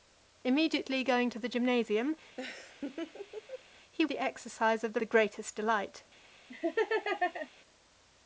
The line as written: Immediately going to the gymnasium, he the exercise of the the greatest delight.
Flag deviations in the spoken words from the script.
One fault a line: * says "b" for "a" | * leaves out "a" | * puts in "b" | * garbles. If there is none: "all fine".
all fine